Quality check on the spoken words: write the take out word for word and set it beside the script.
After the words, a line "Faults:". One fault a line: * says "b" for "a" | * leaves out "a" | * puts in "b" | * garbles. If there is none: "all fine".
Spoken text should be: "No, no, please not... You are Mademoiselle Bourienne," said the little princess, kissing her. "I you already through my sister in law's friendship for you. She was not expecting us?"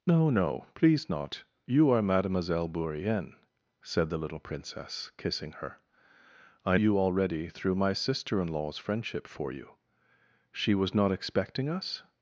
"No, no, please not... You are Mademoiselle Bourienne," said the little princess, kissing her. "I you already through my sister in law's friendship for you. She was not expecting us?"
Faults:
all fine